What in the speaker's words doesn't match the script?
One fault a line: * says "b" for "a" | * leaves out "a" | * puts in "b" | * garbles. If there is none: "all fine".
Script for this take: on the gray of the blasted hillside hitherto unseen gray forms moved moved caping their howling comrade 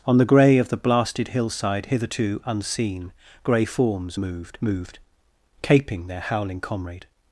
all fine